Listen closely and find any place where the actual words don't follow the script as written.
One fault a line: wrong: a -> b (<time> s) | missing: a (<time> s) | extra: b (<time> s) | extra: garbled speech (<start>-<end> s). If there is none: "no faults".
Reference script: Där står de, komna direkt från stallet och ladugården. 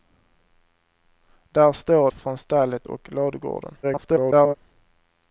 missing: de komna direkt (2.1 s)
extra: garbled speech (3.8-4.6 s)